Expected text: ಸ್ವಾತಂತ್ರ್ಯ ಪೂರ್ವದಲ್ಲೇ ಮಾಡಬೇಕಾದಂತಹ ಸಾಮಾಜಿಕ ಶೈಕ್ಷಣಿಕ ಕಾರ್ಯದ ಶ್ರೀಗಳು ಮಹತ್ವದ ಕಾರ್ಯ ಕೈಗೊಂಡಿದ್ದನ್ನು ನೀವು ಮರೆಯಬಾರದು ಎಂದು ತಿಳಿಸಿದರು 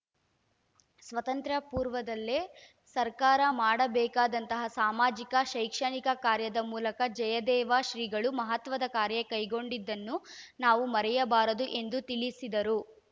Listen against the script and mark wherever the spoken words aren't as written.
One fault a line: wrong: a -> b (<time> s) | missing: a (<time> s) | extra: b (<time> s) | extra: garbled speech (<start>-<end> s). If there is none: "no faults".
extra: ಸರ್ಕಾರ (3.0 s)
extra: ಮೂಲಕ ಜಯದೇವ (6.7 s)
wrong: ನೀವು -> ನಾವು (10.6 s)